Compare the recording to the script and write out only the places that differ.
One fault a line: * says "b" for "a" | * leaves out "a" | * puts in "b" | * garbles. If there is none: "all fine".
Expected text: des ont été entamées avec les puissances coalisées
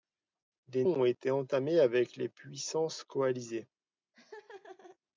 all fine